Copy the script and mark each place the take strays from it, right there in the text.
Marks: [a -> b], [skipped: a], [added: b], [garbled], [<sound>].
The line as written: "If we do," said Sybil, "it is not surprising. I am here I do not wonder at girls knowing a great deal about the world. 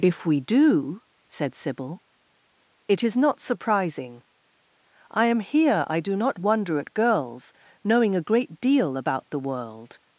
"If we do," said Sybil, "it is not surprising. I am here I do not wonder at girls knowing a great deal about the world.